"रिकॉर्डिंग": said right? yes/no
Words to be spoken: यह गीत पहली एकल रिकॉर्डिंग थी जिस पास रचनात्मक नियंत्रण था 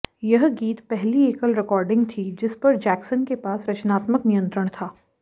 yes